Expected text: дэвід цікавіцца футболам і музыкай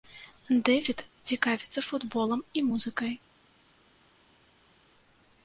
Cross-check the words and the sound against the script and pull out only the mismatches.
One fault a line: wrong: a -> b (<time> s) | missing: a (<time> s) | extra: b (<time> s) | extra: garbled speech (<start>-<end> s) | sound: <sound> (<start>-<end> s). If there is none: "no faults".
no faults